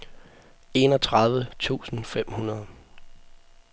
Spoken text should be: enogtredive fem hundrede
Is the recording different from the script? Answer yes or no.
yes